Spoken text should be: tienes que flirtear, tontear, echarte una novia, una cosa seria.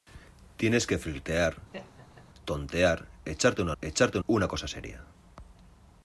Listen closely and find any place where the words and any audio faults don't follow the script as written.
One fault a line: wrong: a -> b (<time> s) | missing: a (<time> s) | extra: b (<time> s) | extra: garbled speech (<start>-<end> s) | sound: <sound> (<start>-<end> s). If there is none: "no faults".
sound: laugh (1.7-2.3 s)
wrong: novia -> echarte (3.8 s)